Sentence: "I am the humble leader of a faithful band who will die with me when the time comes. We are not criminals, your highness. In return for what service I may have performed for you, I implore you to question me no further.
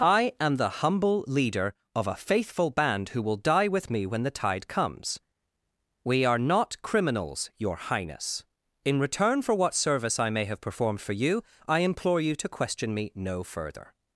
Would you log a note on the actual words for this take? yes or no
yes